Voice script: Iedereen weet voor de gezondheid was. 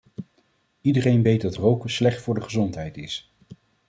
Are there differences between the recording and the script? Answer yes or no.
yes